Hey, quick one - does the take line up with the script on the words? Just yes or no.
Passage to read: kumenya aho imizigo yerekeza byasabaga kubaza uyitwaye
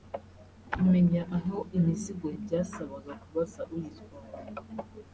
no